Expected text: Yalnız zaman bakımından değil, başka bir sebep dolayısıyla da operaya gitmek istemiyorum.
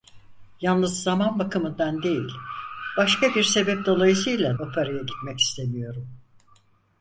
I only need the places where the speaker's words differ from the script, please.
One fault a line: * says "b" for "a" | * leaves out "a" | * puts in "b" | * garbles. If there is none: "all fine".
* leaves out "da"